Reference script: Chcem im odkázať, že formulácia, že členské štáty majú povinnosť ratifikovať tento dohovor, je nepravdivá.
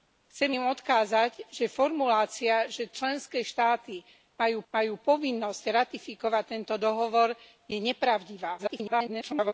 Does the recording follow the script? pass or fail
fail